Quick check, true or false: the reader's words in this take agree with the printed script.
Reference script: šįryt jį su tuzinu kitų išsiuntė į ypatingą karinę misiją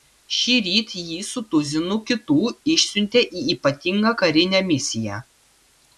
true